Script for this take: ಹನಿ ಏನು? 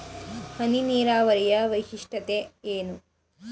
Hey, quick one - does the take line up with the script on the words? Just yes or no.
no